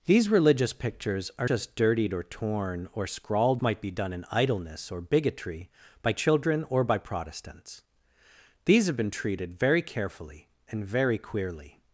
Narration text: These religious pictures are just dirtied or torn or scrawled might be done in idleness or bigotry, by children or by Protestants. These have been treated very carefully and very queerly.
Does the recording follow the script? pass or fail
pass